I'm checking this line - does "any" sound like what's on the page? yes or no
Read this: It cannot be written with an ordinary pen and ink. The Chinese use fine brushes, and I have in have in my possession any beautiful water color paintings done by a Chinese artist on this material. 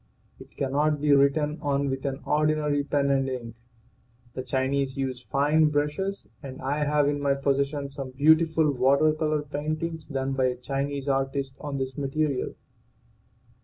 no